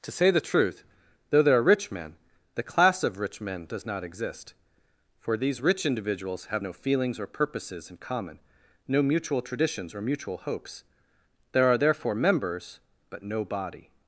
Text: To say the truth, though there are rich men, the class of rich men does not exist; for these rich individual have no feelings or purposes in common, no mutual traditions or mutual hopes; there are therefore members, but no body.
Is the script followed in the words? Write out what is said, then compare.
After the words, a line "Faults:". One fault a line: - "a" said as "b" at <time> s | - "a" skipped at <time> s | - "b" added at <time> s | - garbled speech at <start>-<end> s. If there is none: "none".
To say the truth, though there are rich men, the class of rich men does not exist; for these rich individuals have no feelings or purposes in common, no mutual traditions or mutual hopes; there are therefore members, but no body.
Faults:
- "individual" said as "individuals" at 5.8 s